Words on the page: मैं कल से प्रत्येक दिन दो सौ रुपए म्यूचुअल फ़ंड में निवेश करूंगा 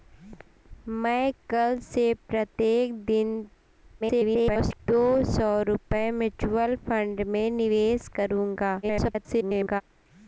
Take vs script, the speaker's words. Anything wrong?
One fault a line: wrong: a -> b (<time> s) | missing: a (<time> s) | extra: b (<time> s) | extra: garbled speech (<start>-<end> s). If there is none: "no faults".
extra: garbled speech (4.0-4.8 s)
extra: garbled speech (8.8-9.8 s)